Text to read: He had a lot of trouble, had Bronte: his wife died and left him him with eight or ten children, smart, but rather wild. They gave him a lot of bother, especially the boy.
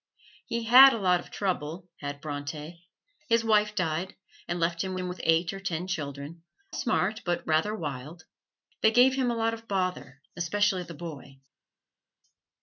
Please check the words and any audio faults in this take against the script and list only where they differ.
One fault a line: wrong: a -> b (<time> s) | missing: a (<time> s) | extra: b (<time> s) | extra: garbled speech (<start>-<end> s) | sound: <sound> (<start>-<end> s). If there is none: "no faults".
no faults